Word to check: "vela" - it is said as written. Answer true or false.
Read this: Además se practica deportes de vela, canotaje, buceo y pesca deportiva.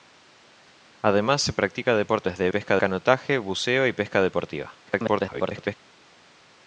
false